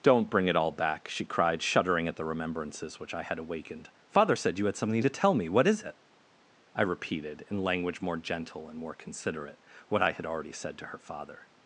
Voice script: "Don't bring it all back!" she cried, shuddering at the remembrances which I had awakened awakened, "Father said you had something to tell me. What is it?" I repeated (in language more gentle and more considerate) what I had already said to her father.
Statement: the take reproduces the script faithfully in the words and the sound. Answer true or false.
false